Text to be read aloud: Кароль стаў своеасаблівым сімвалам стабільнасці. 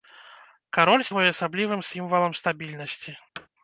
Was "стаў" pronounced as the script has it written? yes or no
no